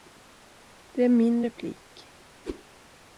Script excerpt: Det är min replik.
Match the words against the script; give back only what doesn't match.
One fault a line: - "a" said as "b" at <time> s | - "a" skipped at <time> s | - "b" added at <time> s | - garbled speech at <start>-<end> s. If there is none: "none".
none